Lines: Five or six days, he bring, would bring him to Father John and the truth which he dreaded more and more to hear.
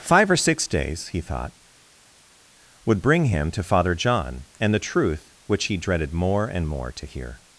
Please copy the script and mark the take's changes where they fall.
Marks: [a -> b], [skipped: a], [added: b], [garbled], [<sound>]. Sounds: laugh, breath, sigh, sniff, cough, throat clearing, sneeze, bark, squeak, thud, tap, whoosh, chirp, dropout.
Five or six days, he [bring, -> thought] would bring him to Father John and the truth which he dreaded more and more to hear.